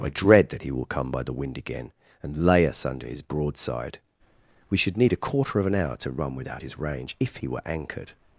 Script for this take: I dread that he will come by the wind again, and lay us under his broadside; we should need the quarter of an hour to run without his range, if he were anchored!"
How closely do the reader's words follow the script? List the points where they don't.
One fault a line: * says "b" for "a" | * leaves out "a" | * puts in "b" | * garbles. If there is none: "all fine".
* says "a" for "the"